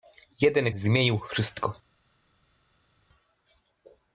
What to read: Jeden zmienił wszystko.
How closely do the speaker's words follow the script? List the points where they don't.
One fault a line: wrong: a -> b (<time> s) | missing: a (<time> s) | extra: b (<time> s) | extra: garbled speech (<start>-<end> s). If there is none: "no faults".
no faults